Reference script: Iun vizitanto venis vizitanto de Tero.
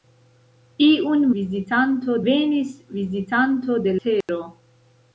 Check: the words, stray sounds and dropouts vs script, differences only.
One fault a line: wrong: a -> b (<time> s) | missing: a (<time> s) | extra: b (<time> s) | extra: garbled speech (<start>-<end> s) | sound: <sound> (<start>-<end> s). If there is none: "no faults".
sound: dropout (4.2-4.3 s)